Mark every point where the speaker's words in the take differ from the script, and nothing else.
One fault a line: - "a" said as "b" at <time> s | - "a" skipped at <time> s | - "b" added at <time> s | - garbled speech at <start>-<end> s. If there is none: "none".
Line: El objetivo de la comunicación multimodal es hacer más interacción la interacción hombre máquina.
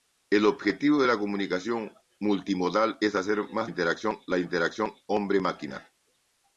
none